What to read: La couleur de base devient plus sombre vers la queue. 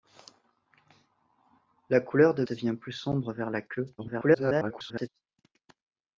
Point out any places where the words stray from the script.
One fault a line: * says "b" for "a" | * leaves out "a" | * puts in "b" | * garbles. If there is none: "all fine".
* leaves out "base"
* garbles